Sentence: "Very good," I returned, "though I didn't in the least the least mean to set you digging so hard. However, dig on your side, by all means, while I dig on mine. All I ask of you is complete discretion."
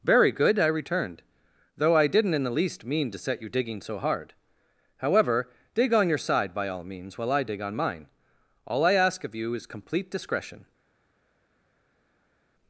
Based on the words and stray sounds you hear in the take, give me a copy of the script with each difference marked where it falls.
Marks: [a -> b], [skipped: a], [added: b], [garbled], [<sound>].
"Very good," I returned, "though I didn't in the least [skipped: the least] mean to set you digging so hard. However, dig on your side, by all means, while I dig on mine. All I ask of you is complete discretion."